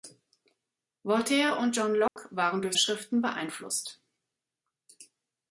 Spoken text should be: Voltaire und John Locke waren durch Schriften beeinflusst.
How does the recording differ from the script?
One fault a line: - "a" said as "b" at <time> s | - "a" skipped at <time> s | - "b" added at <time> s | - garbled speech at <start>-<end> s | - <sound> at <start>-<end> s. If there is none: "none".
- dropout at 2.1-2.2 s